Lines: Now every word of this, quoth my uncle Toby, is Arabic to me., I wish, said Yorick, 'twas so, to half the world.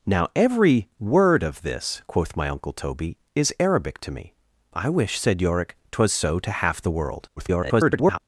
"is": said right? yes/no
yes